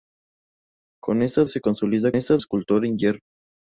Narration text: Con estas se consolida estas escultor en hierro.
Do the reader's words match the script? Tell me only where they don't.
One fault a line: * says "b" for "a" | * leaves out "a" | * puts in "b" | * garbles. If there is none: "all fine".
all fine